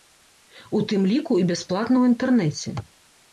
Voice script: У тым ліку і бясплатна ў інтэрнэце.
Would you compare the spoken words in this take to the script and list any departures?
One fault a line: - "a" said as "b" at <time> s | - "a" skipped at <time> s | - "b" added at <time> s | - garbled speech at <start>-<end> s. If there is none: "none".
none